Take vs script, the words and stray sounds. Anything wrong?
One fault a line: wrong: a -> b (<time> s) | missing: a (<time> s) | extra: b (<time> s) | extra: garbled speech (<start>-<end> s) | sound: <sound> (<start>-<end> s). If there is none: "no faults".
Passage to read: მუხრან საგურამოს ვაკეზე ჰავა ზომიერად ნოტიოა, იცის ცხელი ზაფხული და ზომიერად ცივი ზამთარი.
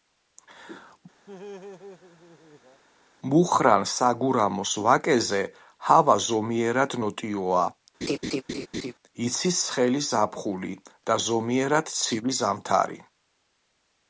sound: laugh (1.3-2.8 s)
sound: laugh (8.0-8.9 s)